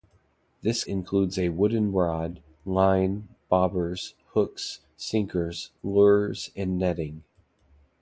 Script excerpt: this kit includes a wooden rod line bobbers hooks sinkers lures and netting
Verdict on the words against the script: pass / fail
fail